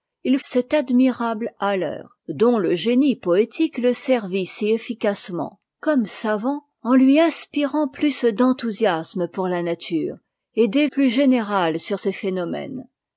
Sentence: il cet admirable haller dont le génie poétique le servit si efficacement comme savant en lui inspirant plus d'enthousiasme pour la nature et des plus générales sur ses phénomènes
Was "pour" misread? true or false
false